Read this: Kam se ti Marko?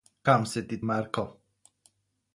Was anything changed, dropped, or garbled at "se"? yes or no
no